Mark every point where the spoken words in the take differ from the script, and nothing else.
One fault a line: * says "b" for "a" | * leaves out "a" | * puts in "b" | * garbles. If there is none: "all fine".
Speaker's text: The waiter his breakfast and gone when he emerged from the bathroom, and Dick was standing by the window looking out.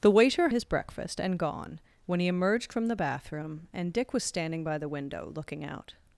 all fine